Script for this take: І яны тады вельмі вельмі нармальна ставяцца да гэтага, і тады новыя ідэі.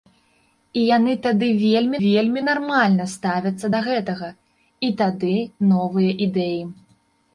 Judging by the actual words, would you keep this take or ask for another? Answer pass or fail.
pass